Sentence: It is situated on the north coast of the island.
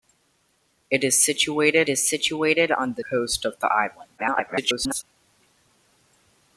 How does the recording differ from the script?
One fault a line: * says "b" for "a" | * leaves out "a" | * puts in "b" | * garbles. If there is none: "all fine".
* puts in "is situated"
* leaves out "north"
* garbles